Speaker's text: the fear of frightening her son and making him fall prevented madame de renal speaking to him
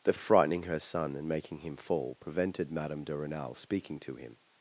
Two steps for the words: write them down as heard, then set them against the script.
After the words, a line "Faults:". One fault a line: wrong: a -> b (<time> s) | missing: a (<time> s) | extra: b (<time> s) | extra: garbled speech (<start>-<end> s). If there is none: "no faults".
the of frightening her son and making him fall prevented madame de renal speaking to him
Faults:
missing: fear (0.1 s)